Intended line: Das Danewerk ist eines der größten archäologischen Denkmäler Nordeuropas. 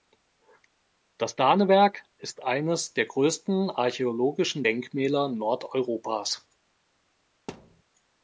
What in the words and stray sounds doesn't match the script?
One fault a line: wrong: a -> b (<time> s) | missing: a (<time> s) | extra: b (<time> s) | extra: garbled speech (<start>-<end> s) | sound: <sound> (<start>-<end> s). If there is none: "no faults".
sound: thud (7.5-7.8 s)